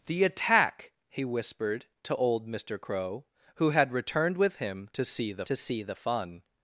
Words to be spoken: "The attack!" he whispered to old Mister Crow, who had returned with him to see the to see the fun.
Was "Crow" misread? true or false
false